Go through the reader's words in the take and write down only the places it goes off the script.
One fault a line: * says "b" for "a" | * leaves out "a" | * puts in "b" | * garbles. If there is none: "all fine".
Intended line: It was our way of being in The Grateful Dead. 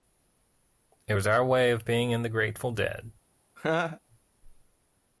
all fine